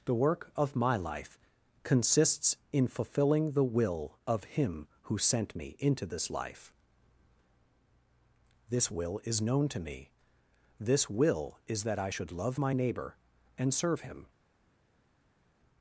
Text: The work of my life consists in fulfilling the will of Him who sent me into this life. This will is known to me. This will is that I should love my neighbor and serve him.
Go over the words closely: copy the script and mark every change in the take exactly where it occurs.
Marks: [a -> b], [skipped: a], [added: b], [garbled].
The work of my life consists in fulfilling the will of Him who sent me into this life. This will is known to me. This will is that I should love my neighbor and serve him.